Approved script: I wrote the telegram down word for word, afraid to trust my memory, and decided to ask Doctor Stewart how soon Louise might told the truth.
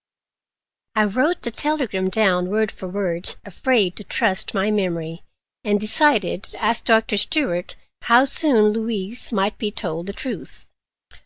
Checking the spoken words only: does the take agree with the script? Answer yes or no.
no